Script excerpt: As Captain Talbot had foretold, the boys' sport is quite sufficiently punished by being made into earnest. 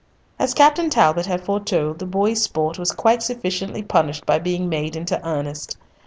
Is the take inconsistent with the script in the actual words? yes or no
yes